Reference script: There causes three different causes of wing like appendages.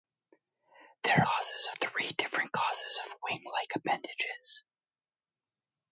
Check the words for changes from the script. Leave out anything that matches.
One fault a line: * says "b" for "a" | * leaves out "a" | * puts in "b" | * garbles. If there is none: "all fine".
all fine